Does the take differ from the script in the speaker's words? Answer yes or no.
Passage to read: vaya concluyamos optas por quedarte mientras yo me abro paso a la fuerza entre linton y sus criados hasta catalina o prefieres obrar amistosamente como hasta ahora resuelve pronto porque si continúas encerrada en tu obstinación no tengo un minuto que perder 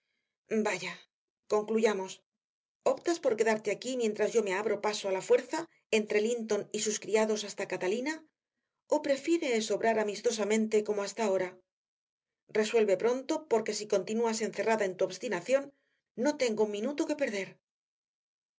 yes